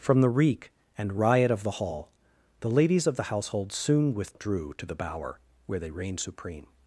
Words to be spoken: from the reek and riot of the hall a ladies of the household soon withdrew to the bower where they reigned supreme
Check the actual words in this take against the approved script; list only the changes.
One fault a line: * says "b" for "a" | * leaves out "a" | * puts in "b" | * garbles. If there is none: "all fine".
* says "the" for "a"